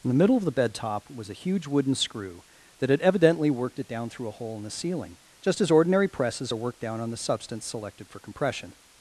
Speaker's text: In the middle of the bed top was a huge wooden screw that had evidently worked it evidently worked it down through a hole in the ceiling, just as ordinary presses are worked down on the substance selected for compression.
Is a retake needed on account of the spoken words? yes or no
yes